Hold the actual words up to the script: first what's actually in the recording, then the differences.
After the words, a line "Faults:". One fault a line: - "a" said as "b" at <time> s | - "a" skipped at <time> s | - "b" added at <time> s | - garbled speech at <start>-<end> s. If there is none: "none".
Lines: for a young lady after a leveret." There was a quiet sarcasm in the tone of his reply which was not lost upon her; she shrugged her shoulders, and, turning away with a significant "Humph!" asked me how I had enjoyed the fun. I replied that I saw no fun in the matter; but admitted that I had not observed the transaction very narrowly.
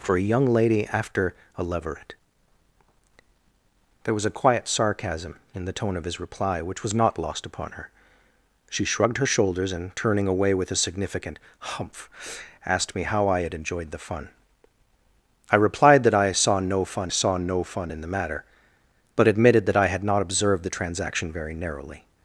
for a young lady after a leveret." There was a quiet sarcasm in the tone of his reply which was not lost upon her; she shrugged her shoulders, and, turning away with a significant "Humph!" asked me how I had enjoyed the fun. I replied that I saw no fun saw no fun in the matter; but admitted that I had not observed the transaction very narrowly.
Faults:
- "saw no fun" added at 17.1 s